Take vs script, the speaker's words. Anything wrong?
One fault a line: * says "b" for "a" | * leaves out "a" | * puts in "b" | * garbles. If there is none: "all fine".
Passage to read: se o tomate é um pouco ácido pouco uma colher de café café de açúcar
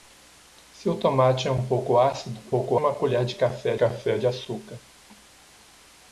all fine